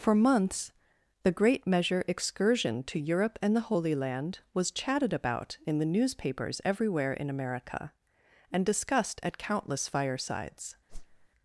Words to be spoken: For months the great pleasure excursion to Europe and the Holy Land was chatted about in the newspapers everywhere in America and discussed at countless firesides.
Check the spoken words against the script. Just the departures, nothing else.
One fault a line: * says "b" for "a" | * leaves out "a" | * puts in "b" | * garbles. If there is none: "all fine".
* says "measure" for "pleasure"